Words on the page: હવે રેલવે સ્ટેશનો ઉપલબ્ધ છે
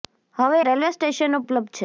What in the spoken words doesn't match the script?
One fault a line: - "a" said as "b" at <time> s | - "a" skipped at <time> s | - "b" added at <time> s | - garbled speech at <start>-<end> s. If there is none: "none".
none